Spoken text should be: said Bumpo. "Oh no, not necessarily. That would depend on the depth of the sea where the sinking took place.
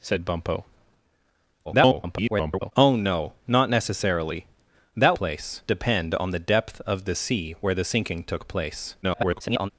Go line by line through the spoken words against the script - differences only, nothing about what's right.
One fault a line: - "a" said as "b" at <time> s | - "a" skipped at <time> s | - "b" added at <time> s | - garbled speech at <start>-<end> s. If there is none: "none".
- garbled speech at 1.6-2.7 s
- "would" said as "place" at 5.1 s
- garbled speech at 9.0-9.7 s